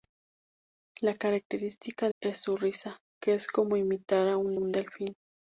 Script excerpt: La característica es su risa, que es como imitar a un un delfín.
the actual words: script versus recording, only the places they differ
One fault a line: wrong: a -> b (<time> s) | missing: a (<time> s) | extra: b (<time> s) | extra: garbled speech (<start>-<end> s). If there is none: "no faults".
no faults